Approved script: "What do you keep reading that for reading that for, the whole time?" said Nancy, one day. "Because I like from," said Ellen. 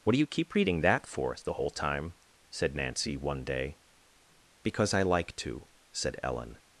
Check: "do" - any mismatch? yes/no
no